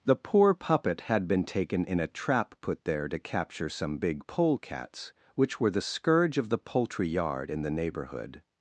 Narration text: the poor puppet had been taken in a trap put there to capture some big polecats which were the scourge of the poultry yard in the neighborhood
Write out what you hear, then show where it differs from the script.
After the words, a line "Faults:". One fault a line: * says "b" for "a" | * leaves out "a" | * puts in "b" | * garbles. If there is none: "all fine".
the poor puppet had been taken in a trap put there to capture some big polecats which were the scourge of the poultry yard in the neighborhood
Faults:
all fine